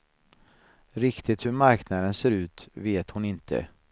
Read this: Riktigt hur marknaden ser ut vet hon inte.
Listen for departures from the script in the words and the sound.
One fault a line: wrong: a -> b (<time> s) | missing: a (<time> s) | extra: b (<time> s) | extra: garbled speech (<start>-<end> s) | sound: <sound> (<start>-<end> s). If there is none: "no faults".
no faults